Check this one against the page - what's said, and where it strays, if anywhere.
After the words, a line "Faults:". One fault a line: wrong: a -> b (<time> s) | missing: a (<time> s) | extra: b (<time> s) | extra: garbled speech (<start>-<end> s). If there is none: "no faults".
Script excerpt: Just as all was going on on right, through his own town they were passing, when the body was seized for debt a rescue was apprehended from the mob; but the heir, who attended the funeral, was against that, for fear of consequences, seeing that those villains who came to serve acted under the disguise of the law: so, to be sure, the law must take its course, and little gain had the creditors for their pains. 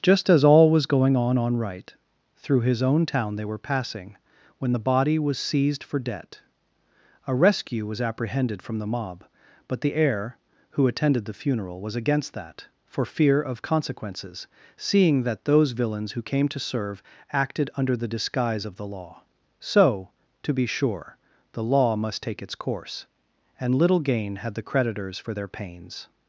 Just as all was going on on right, through his own town they were passing, when the body was seized for debt a rescue was apprehended from the mob; but the heir, who attended the funeral, was against that, for fear of consequences, seeing that those villains who came to serve acted under the disguise of the law: so, to be sure, the law must take its course, and little gain had the creditors for their pains.
Faults:
no faults